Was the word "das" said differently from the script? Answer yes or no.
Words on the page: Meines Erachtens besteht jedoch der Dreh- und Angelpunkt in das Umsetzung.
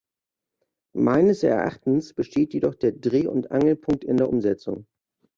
yes